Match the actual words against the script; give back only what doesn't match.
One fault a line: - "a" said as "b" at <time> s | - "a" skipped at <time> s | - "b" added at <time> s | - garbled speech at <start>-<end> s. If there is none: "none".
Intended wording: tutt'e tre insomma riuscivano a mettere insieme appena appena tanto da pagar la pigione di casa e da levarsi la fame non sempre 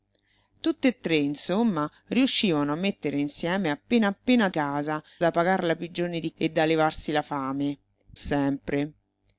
- "tanto" said as "casa" at 4.5 s
- "casa" skipped at 6.3 s
- "non" skipped at 7.8 s